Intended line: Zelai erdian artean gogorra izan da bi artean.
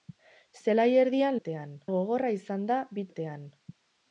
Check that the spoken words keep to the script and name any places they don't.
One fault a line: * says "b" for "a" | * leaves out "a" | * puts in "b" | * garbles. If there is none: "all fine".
all fine